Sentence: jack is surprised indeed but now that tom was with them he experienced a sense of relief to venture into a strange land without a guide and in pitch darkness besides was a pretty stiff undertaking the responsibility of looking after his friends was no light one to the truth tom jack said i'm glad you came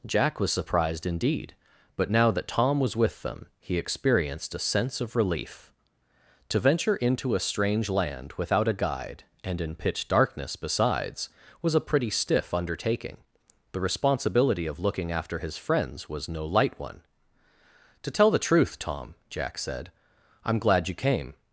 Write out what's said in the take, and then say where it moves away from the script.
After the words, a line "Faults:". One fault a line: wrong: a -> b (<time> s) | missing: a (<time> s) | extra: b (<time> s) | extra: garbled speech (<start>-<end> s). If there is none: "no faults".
jack was surprised indeed but now that tom was with them he experienced a sense of relief to venture into a strange land without a guide and in pitch darkness besides was a pretty stiff undertaking the responsibility of looking after his friends was no light one to tell the truth tom jack said i'm glad you came
Faults:
wrong: is -> was (0.4 s)
extra: tell (18.1 s)